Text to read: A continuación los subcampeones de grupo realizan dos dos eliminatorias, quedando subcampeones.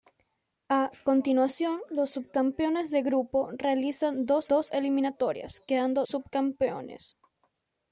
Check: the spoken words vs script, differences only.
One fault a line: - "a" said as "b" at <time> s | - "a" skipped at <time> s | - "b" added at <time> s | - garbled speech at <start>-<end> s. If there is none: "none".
none